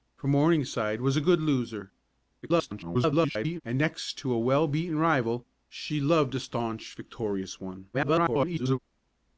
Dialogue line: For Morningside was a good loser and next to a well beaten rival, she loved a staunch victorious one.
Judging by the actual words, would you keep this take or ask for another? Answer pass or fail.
fail